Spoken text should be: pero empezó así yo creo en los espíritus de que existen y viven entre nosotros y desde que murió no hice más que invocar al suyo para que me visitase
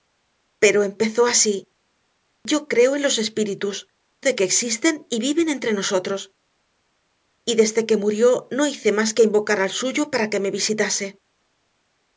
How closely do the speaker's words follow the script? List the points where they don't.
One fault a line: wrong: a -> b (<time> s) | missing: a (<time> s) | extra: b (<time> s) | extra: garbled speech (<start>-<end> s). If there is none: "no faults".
no faults